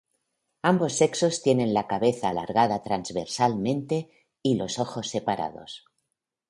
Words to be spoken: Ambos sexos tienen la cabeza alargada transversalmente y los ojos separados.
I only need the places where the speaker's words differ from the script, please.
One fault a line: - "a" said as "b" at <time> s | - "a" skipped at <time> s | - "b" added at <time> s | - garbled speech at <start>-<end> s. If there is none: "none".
none